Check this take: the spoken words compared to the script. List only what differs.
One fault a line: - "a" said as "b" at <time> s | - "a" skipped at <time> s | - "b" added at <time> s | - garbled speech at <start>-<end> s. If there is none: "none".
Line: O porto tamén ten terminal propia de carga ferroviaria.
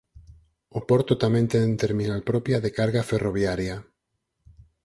none